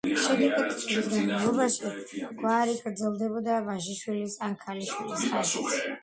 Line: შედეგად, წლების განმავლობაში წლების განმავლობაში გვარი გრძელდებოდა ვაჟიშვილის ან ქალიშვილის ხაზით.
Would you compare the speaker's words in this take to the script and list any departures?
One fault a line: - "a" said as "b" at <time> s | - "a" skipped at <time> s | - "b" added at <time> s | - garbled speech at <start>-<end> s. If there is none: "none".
- "წლების განმავლობაში" skipped at 1.9 s